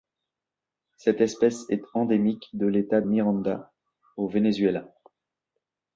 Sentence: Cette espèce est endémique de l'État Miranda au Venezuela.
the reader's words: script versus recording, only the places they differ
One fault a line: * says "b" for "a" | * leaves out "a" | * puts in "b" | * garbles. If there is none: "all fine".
all fine